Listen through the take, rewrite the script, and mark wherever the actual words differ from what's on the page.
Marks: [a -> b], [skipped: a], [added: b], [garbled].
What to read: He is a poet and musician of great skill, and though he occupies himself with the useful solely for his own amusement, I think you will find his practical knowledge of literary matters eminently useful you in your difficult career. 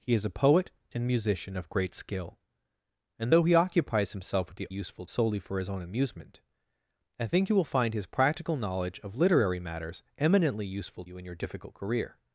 He is a poet and musician of great skill, and though he occupies himself with the useful solely for his own amusement, I think you will find his practical knowledge of literary matters eminently useful you in your difficult career.